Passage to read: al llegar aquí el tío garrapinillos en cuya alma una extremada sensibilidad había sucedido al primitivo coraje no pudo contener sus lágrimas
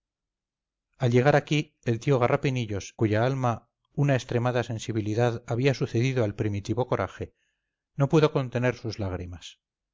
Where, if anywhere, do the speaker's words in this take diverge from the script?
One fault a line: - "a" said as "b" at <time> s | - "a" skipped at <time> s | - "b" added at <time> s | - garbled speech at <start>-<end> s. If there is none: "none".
- "en" skipped at 3.0 s